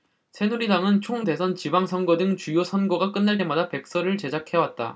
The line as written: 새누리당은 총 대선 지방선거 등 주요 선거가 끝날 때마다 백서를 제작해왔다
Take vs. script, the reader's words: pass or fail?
pass